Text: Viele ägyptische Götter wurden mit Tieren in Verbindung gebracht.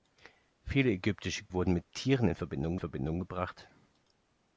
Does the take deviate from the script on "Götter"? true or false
true